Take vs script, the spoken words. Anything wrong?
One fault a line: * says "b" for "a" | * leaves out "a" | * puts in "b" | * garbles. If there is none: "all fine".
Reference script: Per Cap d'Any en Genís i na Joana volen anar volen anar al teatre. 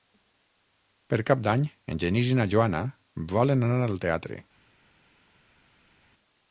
* leaves out "volen anar"